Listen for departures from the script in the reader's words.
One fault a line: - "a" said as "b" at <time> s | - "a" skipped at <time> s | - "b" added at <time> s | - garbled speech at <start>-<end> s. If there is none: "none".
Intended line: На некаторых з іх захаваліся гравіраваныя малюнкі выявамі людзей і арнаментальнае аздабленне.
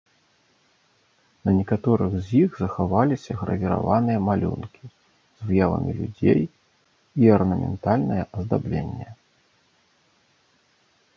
- "з" added at 4.9 s